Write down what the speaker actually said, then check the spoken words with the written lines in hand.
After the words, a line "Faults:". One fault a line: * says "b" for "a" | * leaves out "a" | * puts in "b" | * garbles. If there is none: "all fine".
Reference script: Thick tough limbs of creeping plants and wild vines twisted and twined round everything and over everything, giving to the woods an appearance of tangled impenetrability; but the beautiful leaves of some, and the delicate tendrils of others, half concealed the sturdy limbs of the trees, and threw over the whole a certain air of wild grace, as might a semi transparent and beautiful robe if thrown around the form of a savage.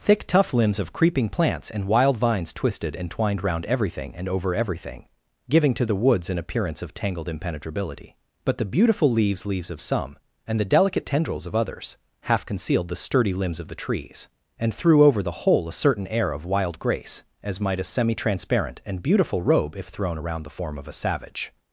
Thick tough limbs of creeping plants and wild vines twisted and twined round everything and over everything, giving to the woods an appearance of tangled impenetrability; but the beautiful leaves leaves of some, and the delicate tendrils of others, half concealed the sturdy limbs of the trees, and threw over the whole a certain air of wild grace, as might a semi transparent and beautiful robe if thrown around the form of a savage.
Faults:
* puts in "leaves"